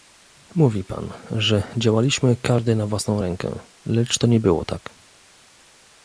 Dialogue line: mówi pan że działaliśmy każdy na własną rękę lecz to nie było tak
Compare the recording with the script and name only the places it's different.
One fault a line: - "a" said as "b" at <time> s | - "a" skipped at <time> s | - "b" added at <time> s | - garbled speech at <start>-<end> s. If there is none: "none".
none